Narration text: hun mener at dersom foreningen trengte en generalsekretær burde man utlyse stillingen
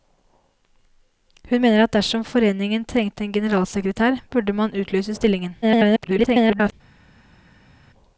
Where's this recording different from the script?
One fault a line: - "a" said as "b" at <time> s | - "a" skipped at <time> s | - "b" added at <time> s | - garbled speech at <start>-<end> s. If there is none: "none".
- garbled speech at 5.6-6.7 s